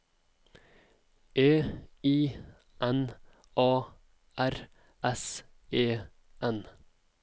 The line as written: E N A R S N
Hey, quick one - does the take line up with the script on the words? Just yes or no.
no